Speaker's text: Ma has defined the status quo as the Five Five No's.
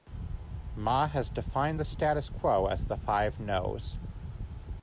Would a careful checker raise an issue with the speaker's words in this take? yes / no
yes